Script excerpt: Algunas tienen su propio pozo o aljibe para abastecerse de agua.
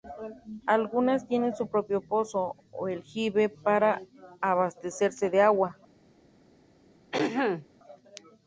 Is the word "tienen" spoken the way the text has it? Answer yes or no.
yes